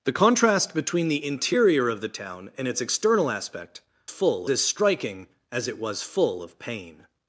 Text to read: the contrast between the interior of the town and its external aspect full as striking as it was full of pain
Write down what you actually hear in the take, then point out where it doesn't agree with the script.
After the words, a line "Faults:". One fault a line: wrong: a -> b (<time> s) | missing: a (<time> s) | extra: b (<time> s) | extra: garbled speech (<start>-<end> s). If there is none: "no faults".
the contrast between the interior of the town and its external aspect full as striking as it was full of pain
Faults:
no faults